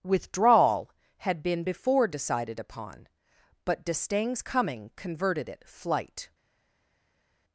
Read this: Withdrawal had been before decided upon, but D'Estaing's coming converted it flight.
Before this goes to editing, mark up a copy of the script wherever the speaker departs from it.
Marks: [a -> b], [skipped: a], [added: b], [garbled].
Withdrawal had been before decided upon, but D'Estaing's coming converted it flight.